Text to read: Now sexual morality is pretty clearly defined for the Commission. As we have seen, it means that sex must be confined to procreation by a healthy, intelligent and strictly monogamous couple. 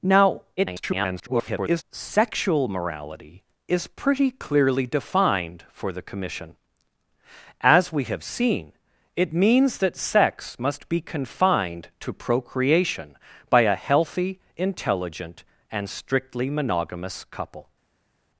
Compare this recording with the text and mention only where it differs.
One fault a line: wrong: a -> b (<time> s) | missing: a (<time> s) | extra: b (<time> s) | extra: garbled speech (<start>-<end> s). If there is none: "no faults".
extra: garbled speech (0.6-1.8 s)